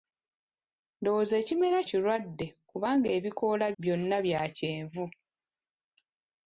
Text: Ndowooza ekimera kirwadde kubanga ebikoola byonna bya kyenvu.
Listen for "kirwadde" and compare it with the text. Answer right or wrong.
right